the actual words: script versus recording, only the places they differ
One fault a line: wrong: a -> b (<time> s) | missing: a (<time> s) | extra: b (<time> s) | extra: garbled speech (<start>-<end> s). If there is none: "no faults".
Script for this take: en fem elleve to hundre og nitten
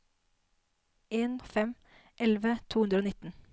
no faults